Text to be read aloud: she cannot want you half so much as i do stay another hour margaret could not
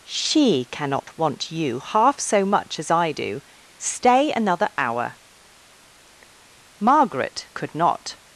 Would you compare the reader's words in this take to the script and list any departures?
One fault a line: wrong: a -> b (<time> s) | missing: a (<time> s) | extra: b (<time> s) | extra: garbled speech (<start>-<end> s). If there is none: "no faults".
no faults